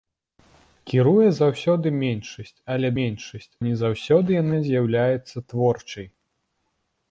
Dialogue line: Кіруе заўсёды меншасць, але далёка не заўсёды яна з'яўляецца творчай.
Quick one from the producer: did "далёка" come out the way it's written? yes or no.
no